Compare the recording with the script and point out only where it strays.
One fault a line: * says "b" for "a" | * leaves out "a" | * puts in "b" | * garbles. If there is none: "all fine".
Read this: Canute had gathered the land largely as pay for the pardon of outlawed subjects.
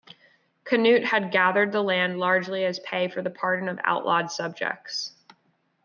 all fine